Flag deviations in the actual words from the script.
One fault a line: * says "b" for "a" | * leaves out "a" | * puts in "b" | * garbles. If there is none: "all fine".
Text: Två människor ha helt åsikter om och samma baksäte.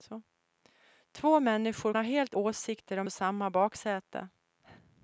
all fine